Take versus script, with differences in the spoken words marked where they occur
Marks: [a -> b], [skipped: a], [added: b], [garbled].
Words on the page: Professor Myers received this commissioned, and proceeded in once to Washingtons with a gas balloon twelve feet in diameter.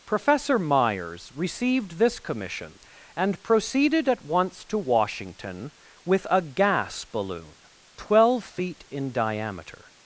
Professor Myers received this [commissioned, -> commission] and proceeded [in -> at] once to [Washingtons -> Washington] with a gas balloon twelve feet in diameter.